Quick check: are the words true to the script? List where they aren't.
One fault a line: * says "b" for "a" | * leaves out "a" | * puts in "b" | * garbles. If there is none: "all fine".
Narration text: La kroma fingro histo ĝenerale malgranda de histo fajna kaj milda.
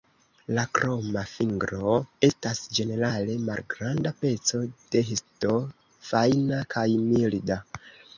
* says "estas" for "histo"
* puts in "peco"